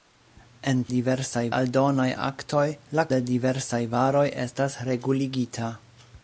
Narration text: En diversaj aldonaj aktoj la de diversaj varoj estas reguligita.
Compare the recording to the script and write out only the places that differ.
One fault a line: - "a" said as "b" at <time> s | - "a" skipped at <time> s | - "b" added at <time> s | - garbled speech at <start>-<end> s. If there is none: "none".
none